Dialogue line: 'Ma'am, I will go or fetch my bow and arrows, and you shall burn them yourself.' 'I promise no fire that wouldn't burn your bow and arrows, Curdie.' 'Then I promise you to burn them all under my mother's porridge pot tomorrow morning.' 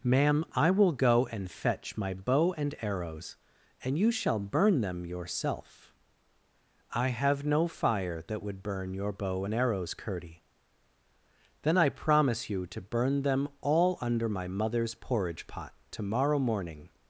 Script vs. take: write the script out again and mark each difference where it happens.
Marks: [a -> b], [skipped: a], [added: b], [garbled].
'Ma'am, I will go [or -> and] fetch my bow and arrows, and you shall burn them yourself.' 'I [promise -> have] no fire that [wouldn't -> would] burn your bow and arrows, Curdie.' 'Then I promise you to burn them all under my mother's porridge pot tomorrow morning.'